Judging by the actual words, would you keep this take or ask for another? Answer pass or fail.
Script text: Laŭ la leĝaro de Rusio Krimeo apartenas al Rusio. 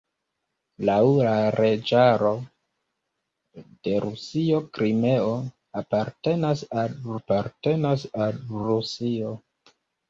fail